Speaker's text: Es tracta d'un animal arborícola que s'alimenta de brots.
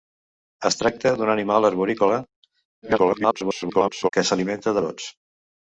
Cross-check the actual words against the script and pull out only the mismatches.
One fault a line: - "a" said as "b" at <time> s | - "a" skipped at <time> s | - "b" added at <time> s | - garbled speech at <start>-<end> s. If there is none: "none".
- garbled speech at 2.8-4.1 s
- "de" skipped at 4.8 s